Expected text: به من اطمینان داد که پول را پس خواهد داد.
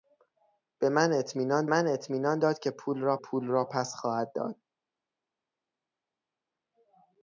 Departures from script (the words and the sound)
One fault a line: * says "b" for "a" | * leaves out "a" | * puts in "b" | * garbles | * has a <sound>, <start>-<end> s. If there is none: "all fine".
* puts in "من اطمینان"
* puts in "پول را"